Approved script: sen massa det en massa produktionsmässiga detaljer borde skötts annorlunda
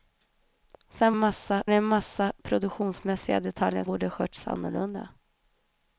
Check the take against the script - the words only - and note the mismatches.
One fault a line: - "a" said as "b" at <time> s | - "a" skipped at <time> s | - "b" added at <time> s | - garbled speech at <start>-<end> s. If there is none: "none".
none